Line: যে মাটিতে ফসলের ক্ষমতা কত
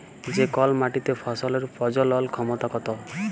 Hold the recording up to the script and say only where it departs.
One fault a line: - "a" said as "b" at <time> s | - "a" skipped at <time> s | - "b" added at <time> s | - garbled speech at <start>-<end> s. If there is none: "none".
- "কল" added at 0.5 s
- "প্রজলল" added at 1.7 s